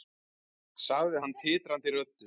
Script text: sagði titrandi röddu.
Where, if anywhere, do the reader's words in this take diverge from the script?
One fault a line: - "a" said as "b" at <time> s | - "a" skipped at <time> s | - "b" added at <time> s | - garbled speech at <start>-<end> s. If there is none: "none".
- "hann" added at 1.2 s